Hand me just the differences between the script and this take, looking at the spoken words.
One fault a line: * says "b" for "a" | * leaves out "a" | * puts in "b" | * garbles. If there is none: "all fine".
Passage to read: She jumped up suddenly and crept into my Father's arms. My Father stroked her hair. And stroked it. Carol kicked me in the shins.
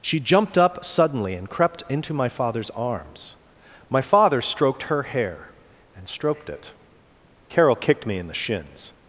all fine